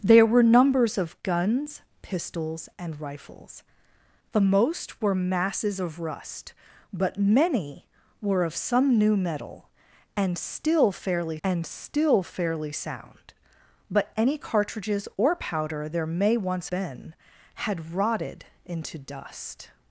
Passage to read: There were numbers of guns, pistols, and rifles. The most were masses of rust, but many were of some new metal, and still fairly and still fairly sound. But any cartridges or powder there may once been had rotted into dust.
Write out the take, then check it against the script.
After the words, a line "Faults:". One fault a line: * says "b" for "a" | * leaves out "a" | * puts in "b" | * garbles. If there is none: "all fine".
There were numbers of guns, pistols, and rifles. The most were masses of rust, but many were of some new metal, and still fairly and still fairly sound. But any cartridges or powder there may once been had rotted into dust.
Faults:
all fine